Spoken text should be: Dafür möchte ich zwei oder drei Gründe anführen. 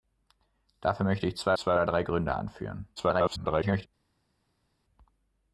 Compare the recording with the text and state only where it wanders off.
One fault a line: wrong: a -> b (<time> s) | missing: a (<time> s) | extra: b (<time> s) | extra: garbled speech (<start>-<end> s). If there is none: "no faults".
extra: zwei (1.6 s)
extra: garbled speech (3.0-3.9 s)